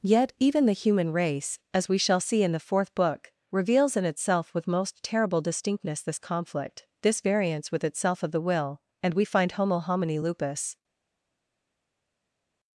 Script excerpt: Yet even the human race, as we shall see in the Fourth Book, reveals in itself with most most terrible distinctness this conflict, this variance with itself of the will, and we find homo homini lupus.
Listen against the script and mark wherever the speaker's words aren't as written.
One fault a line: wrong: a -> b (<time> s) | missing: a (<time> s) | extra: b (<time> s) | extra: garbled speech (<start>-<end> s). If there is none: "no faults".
missing: most (5.0 s)